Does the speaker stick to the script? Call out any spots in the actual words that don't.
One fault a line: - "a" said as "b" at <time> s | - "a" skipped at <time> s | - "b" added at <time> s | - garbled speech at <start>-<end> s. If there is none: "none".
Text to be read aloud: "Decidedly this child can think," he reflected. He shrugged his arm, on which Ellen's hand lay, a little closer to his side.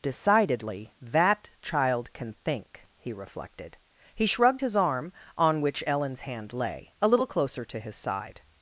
- "this" said as "that" at 1.0 s